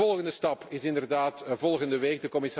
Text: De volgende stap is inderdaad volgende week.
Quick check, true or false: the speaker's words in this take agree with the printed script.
true